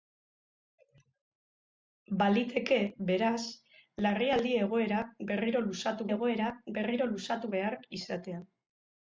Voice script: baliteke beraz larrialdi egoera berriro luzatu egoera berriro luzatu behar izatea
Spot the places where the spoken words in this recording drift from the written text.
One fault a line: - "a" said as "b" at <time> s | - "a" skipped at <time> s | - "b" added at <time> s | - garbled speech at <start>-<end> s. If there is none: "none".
none